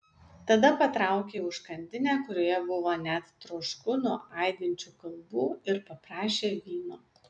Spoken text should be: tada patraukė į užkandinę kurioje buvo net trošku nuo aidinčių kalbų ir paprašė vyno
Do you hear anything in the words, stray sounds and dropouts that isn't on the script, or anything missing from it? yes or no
no